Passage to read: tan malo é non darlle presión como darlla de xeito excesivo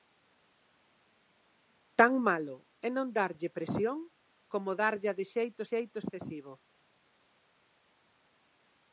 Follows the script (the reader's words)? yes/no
no